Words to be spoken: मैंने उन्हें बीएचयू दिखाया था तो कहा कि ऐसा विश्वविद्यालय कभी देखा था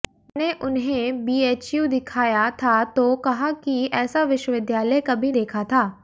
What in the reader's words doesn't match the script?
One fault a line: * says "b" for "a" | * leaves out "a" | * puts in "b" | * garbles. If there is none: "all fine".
all fine